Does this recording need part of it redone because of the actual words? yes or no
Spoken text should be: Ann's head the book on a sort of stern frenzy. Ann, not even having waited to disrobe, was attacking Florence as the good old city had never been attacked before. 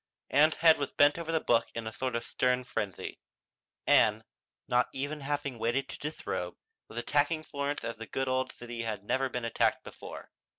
yes